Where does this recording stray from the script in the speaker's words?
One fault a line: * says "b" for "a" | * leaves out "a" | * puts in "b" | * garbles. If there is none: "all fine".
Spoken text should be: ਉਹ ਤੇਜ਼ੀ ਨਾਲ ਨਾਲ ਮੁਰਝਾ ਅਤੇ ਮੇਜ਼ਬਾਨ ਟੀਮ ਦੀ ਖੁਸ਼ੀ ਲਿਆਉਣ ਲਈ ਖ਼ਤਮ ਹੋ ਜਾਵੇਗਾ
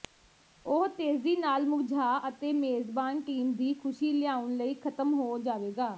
* leaves out "ਨਾਲ"